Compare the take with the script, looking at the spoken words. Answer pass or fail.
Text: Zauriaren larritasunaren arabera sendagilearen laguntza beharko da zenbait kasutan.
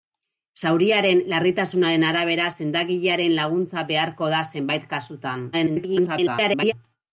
fail